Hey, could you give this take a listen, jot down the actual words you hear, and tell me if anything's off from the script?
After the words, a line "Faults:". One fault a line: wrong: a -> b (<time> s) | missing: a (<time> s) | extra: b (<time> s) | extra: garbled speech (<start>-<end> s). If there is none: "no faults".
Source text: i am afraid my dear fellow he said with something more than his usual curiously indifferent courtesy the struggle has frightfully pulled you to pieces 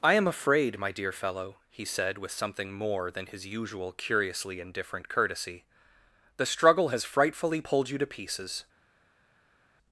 i am afraid my dear fellow he said with something more than his usual curiously indifferent courtesy the struggle has frightfully pulled you to pieces
Faults:
no faults